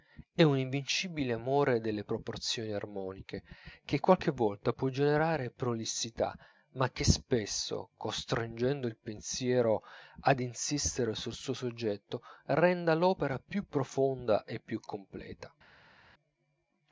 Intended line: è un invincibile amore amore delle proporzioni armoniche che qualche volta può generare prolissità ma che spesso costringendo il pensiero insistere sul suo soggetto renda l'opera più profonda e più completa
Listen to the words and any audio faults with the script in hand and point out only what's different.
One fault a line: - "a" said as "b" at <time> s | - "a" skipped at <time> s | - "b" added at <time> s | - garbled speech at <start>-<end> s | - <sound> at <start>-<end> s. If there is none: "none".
- "amore" skipped at 1.8 s
- "ad" added at 10.2 s